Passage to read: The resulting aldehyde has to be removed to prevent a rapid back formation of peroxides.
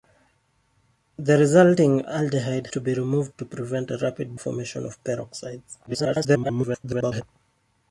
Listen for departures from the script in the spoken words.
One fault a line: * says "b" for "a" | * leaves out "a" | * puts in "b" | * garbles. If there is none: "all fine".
* leaves out "has"
* leaves out "back"
* garbles